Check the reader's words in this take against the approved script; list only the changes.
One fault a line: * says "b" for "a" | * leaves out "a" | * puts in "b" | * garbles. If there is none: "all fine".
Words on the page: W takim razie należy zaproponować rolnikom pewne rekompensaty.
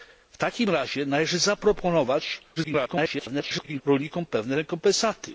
* garbles